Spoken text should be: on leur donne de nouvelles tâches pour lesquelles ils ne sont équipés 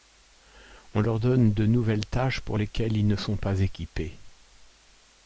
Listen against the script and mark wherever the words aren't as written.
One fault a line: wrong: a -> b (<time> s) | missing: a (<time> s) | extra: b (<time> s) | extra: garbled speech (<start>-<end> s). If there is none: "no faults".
extra: pas (3.3 s)